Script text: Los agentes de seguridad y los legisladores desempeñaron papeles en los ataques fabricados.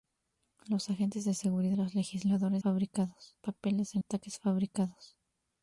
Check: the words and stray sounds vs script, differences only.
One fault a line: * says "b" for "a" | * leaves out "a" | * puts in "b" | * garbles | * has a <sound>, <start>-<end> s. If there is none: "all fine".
* leaves out "y"
* says "fabricados" for "desempeñaron"
* leaves out "los"